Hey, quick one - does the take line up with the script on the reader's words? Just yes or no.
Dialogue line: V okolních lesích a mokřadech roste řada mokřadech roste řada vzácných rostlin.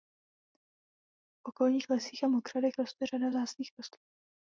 no